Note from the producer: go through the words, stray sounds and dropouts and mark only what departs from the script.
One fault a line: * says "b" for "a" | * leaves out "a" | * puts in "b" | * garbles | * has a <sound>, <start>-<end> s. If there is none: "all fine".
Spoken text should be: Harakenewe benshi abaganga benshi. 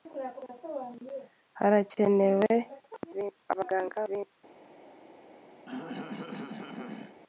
* has a throat clearing, 5.6-7.2 s